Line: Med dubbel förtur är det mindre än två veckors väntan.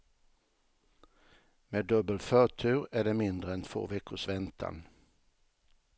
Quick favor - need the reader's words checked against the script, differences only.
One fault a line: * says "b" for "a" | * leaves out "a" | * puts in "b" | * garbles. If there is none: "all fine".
all fine